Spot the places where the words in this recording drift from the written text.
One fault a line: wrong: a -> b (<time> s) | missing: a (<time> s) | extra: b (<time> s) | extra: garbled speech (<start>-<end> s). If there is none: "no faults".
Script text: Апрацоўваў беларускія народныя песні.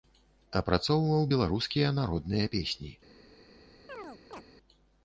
no faults